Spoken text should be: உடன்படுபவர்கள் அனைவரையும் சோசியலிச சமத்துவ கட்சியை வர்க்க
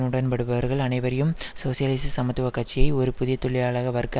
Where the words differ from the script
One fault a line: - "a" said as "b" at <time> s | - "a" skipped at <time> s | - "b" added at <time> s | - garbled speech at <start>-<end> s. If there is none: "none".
- "ஒரு புதிய தொழிலாள" added at 2.9 s